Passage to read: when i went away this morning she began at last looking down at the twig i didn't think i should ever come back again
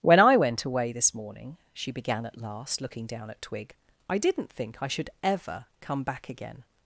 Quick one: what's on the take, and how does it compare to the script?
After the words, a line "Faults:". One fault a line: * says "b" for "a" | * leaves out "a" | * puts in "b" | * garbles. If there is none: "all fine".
when i went away this morning she began at last looking down at twig i didn't think i should ever come back again
Faults:
* leaves out "the"